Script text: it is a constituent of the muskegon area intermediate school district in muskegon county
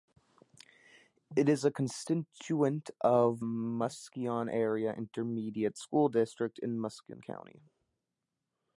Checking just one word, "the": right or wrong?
wrong